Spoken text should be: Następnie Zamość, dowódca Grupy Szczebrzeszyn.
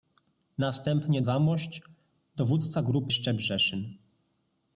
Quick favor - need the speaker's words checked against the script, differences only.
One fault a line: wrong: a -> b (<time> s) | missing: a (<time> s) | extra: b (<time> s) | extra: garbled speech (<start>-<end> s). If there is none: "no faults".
no faults